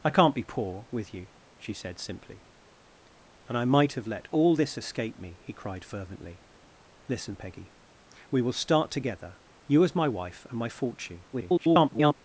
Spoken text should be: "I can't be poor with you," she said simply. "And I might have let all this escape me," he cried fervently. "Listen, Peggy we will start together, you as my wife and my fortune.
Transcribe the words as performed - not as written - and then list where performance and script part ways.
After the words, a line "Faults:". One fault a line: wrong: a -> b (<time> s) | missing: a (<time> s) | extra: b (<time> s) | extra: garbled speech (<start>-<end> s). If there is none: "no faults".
"I can't be poor with you," she said simply. "And I might have let all this escape me," he cried fervently. "Listen, Peggy we will start together, you as my wife and my fortune. [garbled]
Faults:
extra: garbled speech (11.3-12.1 s)